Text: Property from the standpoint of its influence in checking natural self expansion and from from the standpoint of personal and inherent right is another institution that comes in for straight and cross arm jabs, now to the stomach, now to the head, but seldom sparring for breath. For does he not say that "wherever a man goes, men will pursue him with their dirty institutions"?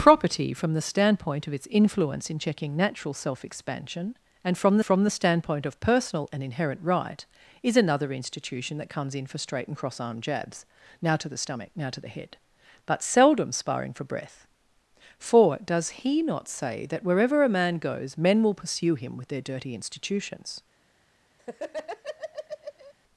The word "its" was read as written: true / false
true